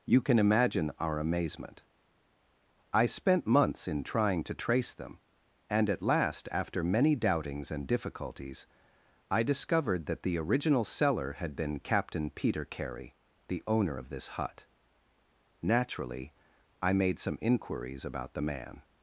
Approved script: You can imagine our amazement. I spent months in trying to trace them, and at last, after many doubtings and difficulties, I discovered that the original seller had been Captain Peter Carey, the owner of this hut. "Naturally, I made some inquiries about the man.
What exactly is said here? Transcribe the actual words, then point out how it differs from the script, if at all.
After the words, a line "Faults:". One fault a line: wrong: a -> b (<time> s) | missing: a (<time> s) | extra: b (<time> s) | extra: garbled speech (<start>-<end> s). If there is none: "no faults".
You can imagine our amazement. I spent months in trying to trace them, and at last, after many doubtings and difficulties, I discovered that the original seller had been Captain Peter Carey, the owner of this hut. "Naturally, I made some inquiries about the man.
Faults:
no faults